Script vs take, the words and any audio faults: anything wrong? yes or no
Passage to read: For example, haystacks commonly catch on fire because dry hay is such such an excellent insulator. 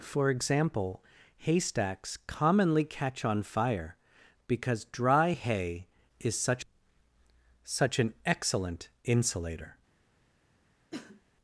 yes